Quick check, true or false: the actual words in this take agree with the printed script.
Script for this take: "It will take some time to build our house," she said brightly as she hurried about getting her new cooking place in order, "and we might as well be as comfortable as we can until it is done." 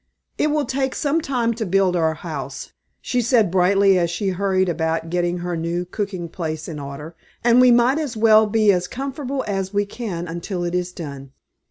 true